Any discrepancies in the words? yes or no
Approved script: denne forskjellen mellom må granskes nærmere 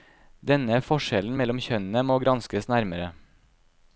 yes